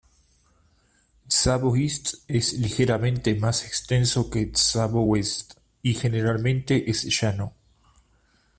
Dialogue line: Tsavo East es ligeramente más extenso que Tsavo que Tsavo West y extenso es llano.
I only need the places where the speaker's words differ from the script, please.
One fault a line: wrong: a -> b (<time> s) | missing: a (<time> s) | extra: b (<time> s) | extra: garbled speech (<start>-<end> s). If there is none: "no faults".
missing: que Tsavo (5.0 s)
wrong: extenso -> generalmente (5.9 s)